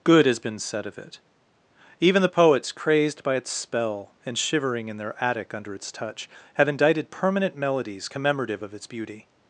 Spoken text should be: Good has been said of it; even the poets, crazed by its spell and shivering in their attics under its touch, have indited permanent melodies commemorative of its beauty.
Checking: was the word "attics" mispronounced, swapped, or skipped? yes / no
yes